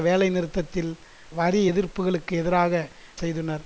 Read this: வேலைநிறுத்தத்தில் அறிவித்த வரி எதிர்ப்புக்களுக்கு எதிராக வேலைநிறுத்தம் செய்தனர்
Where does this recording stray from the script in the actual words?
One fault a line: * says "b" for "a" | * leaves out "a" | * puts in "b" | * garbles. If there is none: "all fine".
* leaves out "அறிவித்த"
* leaves out "வேலைநிறுத்தம்"